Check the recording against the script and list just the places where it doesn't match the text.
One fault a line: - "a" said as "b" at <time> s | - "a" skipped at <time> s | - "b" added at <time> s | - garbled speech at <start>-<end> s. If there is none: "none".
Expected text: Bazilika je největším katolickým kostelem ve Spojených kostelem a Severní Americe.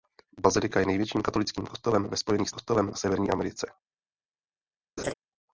none